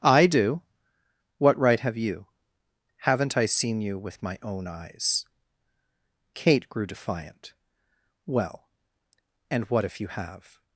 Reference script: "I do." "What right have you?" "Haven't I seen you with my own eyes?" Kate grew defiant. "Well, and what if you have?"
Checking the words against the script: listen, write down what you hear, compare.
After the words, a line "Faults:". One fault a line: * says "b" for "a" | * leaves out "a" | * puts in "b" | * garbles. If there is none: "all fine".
"I do." "What right have you?" "Haven't I seen you with my own eyes?" Kate grew defiant. "Well, and what if you have?"
Faults:
all fine